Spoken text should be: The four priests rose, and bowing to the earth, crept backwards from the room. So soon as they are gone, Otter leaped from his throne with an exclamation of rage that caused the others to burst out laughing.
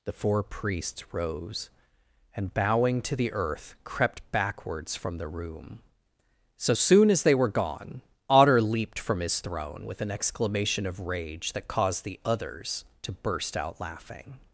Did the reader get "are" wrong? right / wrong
wrong